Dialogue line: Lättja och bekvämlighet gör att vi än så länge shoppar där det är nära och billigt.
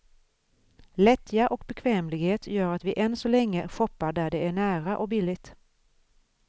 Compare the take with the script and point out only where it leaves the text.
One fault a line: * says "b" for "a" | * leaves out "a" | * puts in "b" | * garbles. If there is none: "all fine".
all fine